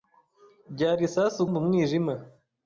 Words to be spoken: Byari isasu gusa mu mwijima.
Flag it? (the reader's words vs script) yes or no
yes